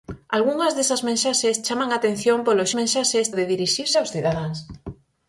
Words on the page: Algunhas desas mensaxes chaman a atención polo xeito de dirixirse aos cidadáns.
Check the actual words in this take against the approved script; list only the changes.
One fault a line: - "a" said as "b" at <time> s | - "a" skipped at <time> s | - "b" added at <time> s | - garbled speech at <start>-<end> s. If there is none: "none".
- "xeito" said as "mensaxes" at 2.8 s